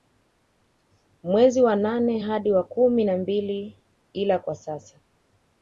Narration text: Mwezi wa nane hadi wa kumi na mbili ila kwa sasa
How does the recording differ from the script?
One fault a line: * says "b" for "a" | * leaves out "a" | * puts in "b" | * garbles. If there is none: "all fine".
all fine